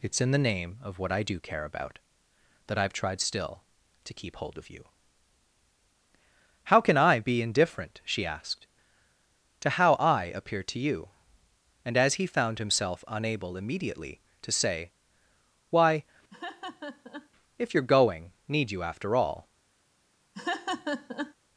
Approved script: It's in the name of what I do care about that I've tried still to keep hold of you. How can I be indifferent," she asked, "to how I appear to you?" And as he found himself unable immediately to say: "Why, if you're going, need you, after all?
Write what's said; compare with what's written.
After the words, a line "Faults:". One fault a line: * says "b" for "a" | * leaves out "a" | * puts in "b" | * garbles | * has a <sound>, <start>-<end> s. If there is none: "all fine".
It's in the name of what I do care about that I've tried still to keep hold of you. How can I be indifferent," she asked, "to how I appear to you?" And as he found himself unable immediately to say: "Why, if you're going, need you, after all?
Faults:
* has a laugh, 16.3-17.3 s
* has a laugh, 20.3-21.3 s